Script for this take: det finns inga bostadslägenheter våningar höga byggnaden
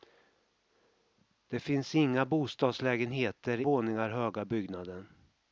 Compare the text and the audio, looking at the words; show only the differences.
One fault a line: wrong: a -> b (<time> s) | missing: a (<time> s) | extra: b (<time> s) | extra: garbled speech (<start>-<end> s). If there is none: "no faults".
no faults